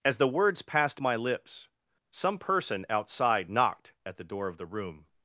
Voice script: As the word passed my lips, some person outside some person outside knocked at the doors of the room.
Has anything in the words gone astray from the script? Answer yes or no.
yes